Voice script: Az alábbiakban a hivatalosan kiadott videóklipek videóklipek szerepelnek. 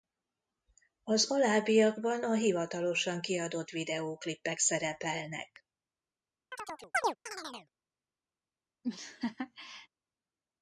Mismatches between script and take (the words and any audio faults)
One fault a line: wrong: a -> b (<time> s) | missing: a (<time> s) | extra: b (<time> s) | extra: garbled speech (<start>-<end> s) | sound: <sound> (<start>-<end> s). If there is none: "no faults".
missing: videóklipek (4.6 s)
sound: chirp (6.5-7.7 s)
sound: laugh (8.8-9.9 s)